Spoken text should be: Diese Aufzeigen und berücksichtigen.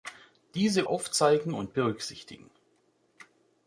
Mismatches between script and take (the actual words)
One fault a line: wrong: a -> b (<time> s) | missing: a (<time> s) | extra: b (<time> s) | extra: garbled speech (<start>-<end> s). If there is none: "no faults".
no faults